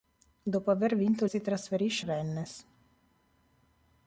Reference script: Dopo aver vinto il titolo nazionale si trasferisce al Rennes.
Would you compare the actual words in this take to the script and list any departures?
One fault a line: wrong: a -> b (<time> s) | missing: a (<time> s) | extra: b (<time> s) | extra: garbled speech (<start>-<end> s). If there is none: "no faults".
missing: il titolo nazionale (1.2 s)
missing: al (2.1 s)